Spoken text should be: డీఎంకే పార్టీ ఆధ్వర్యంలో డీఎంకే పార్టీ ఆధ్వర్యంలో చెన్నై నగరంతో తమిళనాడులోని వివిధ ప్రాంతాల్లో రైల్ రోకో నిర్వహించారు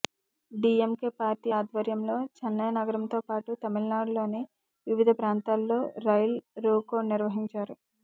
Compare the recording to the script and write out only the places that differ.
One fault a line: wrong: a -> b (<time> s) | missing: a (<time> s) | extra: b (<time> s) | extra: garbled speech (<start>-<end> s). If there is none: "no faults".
missing: డీఎంకే పార్టీ ఆధ్వర్యంలో (2.1 s)
extra: పాటు (3.3 s)